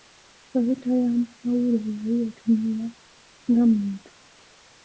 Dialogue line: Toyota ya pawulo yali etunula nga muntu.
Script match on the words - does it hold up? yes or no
yes